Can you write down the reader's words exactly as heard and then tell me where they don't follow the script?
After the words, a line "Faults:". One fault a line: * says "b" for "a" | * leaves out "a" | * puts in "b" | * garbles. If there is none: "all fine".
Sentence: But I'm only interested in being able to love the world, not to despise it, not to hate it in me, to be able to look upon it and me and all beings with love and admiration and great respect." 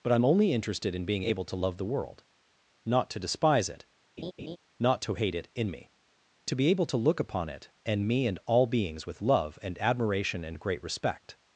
But I'm only interested in being able to love the world, not to despise it, not to hate it in me, to be able to look upon it and me and all beings with love and admiration and great respect."
Faults:
all fine